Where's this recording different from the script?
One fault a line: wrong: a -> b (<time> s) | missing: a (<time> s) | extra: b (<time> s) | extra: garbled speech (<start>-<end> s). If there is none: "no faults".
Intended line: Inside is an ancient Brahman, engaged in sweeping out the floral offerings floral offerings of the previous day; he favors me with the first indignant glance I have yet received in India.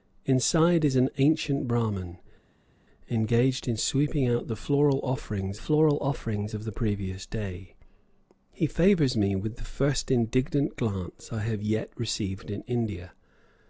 no faults